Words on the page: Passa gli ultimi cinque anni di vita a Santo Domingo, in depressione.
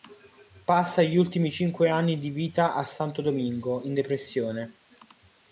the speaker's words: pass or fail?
pass